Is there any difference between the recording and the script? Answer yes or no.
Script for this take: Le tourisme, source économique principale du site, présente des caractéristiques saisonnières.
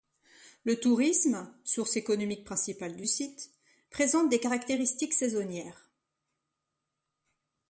no